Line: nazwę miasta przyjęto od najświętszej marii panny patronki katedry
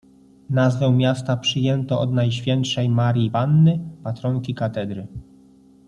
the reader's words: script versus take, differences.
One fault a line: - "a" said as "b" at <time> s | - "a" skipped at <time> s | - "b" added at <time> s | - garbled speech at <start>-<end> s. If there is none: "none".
none